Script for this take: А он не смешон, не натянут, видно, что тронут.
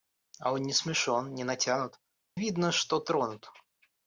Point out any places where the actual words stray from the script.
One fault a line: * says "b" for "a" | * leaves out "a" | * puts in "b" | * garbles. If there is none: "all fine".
all fine